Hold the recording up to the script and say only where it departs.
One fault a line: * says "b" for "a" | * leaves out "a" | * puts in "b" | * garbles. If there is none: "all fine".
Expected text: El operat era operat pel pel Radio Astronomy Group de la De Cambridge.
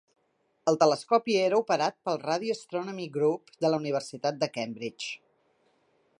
* says "telescopi" for "operat"
* leaves out "pel"
* puts in "Universitat"